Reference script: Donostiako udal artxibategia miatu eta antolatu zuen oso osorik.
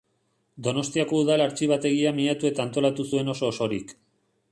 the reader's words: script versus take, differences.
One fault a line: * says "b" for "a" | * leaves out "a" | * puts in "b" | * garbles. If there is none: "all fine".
all fine